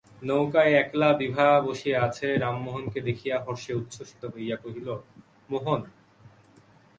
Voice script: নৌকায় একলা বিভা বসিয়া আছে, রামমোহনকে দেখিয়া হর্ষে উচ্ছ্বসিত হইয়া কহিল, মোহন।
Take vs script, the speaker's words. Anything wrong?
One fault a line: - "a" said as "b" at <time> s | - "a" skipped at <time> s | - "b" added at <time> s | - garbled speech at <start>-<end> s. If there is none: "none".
none